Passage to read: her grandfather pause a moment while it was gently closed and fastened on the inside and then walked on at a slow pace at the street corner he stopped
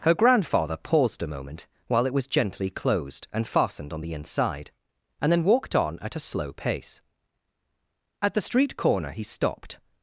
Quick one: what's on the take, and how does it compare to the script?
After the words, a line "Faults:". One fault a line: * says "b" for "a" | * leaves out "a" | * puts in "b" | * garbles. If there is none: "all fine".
her grandfather paused a moment while it was gently closed and fastened on the inside and then walked on at a slow pace at the street corner he stopped
Faults:
* says "paused" for "pause"